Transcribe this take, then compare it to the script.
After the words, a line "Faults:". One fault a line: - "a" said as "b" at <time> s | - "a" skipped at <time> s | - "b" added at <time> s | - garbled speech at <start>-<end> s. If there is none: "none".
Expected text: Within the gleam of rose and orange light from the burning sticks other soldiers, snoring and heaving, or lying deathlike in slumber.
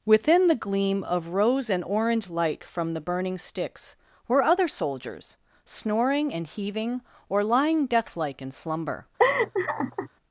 Within the gleam of rose and orange light from the burning sticks were other soldiers, snoring and heaving, or lying deathlike in slumber.
Faults:
- "were" added at 4.3 s